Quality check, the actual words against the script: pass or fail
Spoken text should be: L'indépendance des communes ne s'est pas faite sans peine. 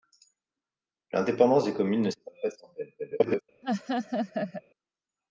fail